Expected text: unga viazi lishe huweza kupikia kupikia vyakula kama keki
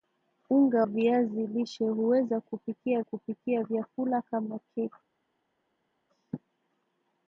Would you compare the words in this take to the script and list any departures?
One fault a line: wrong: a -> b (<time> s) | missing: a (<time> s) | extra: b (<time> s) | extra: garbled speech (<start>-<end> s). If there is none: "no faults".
no faults